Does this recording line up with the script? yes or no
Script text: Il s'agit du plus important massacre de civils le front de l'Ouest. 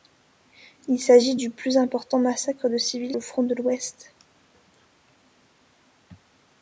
yes